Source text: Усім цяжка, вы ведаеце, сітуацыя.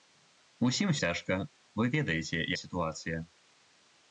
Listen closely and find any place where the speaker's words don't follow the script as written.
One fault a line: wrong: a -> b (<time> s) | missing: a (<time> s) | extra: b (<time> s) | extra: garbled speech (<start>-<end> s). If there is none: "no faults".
no faults